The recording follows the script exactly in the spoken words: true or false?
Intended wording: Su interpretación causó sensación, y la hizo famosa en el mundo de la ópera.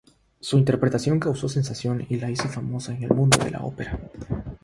true